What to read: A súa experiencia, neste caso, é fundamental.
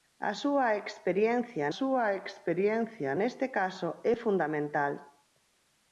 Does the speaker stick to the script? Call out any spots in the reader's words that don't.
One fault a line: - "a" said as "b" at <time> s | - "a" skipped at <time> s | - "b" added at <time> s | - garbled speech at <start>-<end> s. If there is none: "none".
- "súa experiencia" added at 1.8 s